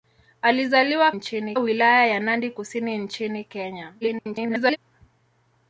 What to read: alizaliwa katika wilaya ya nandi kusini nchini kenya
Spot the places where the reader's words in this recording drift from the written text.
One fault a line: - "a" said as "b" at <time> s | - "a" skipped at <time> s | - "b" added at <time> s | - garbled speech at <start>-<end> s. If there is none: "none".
- "katika" said as "nchini" at 1.1 s
- garbled speech at 4.0-4.8 s